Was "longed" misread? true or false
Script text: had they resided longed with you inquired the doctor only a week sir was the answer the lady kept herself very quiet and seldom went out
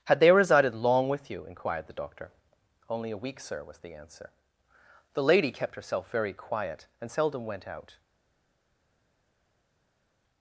true